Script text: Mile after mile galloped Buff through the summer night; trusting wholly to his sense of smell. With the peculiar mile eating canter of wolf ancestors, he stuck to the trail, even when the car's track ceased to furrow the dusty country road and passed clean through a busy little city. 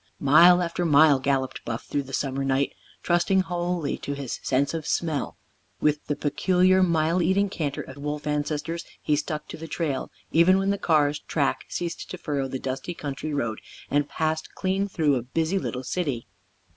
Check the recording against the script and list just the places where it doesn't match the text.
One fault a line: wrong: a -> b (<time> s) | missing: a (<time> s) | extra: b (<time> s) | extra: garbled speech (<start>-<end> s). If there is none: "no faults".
no faults